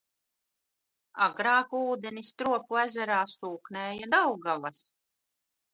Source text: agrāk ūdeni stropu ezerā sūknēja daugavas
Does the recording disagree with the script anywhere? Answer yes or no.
no